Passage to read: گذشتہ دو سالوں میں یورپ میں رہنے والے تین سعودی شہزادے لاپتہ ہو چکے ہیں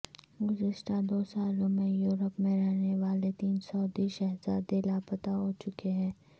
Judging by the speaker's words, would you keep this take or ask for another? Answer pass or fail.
pass